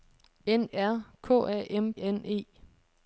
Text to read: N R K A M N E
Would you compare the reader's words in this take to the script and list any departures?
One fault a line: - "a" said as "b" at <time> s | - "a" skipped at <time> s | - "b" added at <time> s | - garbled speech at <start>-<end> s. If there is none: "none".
none